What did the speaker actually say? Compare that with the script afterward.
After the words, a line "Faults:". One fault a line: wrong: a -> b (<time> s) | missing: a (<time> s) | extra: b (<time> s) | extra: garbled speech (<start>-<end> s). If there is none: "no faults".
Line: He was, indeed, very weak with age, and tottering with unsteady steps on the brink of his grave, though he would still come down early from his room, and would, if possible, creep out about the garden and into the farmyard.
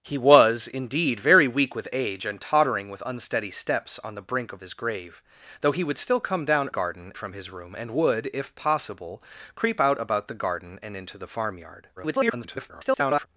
He was, indeed, very weak with age, and tottering with unsteady steps on the brink of his grave, though he would still come down garden from his room, and would, if possible, creep out about the garden and into the farmyard. [garbled]
Faults:
wrong: early -> garden (6.7 s)
extra: garbled speech (12.0-13.3 s)